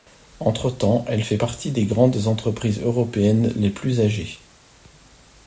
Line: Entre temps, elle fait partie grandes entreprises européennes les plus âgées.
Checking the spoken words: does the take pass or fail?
fail